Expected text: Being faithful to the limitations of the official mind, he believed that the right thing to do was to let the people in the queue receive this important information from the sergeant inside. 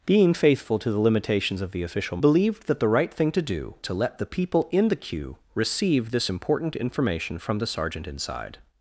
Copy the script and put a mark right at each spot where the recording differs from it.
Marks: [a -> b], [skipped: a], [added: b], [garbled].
Being faithful to the limitations of the official [skipped: mind, he] believed that the right thing to do [skipped: was] to let the people in the queue receive this important information from the sergeant inside.